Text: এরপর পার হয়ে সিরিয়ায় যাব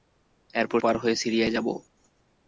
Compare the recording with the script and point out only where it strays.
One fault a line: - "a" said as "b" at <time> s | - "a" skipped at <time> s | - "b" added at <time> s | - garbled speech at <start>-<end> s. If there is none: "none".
none